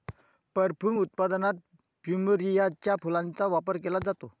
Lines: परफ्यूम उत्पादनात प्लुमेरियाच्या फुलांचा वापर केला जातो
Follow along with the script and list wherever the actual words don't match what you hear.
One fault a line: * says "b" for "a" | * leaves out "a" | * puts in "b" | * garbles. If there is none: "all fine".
all fine